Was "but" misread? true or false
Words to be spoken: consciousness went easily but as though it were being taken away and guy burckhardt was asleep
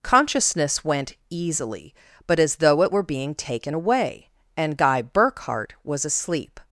false